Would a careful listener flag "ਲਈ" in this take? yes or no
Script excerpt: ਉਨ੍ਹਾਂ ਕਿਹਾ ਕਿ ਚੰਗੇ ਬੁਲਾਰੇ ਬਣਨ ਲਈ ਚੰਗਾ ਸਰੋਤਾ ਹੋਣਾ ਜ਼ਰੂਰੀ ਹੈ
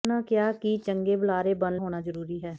yes